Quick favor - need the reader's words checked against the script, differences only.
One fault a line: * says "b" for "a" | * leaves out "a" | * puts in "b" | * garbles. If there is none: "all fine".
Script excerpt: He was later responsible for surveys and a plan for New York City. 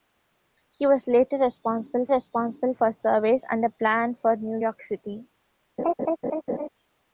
* puts in "responsible"